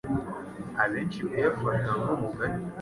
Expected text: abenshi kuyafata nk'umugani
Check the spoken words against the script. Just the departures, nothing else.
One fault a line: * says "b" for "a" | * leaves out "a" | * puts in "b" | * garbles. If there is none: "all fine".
all fine